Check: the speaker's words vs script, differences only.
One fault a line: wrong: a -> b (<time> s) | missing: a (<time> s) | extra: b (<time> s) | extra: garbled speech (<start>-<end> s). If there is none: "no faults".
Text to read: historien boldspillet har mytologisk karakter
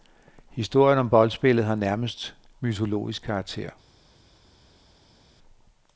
extra: om (1.0 s)
extra: nærmest (1.7 s)